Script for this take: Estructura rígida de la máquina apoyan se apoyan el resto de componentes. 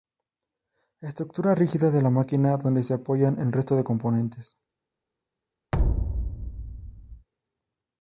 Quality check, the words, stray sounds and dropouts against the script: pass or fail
fail